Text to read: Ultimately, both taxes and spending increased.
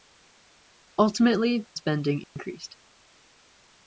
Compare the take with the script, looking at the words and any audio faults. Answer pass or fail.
fail